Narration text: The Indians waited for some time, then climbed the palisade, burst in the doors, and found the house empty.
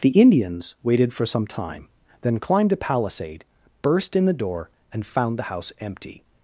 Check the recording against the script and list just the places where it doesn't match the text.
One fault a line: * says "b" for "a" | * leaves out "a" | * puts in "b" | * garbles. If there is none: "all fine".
* says "a" for "the"
* says "door" for "doors"